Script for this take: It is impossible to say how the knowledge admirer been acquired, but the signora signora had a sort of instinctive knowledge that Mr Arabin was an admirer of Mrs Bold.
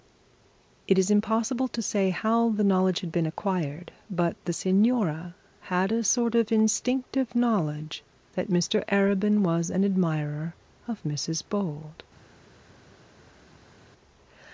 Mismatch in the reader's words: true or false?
true